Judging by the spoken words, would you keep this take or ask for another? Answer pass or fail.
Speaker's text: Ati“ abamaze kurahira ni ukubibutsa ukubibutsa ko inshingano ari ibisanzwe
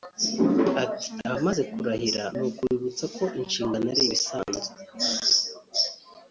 fail